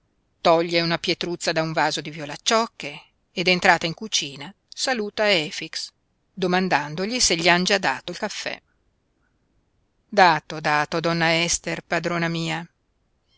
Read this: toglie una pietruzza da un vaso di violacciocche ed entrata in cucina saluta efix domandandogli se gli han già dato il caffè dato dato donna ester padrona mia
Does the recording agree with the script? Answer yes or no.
yes